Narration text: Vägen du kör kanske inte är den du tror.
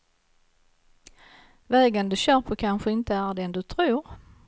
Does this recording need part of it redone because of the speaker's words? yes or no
yes